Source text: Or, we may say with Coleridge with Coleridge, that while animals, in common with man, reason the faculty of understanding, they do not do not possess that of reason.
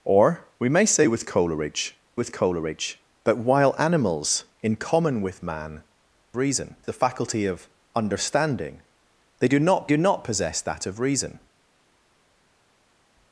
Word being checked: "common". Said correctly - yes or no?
yes